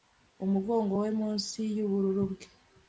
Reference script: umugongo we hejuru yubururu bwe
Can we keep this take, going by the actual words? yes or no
no